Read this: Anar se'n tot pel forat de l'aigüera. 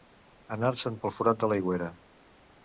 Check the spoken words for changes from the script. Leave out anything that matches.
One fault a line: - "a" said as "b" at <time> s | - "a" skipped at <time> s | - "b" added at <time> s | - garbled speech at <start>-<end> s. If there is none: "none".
- "tot" skipped at 1.0 s